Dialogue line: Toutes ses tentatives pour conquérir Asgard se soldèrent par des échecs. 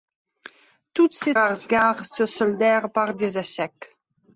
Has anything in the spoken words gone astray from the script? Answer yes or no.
yes